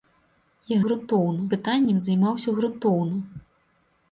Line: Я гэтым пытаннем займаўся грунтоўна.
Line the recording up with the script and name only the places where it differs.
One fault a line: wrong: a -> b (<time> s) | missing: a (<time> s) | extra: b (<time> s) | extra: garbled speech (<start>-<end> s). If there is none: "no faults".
wrong: гэтым -> грунтоўна (0.9 s)